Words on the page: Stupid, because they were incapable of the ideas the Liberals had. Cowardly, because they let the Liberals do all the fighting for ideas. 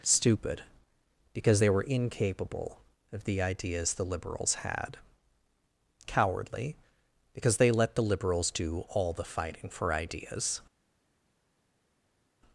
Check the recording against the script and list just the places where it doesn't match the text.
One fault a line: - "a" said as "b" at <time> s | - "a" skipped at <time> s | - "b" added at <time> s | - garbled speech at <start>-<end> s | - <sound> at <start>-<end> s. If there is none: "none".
none